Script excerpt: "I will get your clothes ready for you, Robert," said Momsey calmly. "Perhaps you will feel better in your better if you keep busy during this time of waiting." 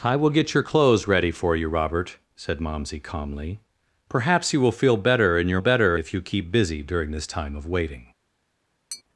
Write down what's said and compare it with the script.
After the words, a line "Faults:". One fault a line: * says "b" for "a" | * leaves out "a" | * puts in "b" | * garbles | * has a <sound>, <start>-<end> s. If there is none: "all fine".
"I will get your clothes ready for you, Robert," said Momsey calmly. "Perhaps you will feel better in your better if you keep busy during this time of waiting."
Faults:
* has a tap, 8.9-9.0 s